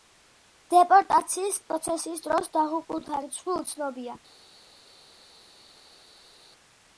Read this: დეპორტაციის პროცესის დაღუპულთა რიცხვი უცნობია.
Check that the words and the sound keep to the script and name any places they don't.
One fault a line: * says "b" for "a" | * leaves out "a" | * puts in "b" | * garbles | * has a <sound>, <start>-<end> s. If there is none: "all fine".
* puts in "დროს"